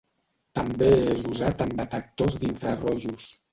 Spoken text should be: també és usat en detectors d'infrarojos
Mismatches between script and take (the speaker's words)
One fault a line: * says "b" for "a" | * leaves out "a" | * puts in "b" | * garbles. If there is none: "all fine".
all fine